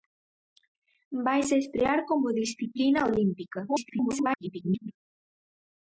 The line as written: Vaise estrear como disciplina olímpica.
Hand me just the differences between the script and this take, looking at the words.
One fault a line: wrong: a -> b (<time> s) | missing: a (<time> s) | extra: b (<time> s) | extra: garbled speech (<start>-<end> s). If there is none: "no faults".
extra: garbled speech (3.7-4.9 s)